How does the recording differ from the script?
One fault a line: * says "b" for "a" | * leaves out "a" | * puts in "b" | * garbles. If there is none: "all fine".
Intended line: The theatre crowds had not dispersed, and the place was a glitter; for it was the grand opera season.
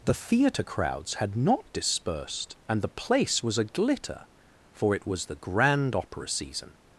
all fine